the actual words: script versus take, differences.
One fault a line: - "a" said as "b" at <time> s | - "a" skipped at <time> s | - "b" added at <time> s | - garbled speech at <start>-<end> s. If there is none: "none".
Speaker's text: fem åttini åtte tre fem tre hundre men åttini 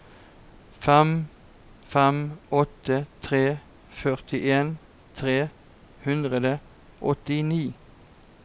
- "åttini" said as "fem" at 1.9 s
- "fem" said as "førtien" at 4.0 s
- "men" said as "og" at 6.5 s